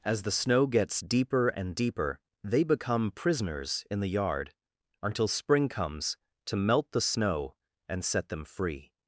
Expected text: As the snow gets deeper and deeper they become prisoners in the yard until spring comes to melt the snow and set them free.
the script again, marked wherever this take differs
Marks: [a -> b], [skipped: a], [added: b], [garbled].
As the snow gets deeper and deeper they become prisoners in the yard until spring comes to melt the snow and set them free.